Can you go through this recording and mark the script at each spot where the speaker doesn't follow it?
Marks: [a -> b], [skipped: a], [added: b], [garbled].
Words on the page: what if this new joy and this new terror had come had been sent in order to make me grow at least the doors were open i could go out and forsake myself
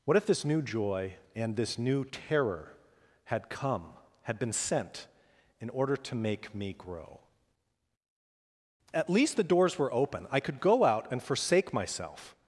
what if this new joy and this new terror had come had been sent in order to make me grow at least the doors were open i could go out and forsake myself